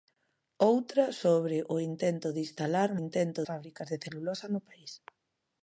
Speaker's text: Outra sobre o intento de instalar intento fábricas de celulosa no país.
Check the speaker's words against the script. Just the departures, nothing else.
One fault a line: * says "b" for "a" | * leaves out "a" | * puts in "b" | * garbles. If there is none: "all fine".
all fine